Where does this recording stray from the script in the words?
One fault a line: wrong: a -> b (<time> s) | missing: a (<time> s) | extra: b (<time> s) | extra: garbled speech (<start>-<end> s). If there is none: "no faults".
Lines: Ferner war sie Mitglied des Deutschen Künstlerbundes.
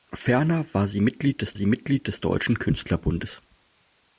extra: sie Mitglied des (1.5 s)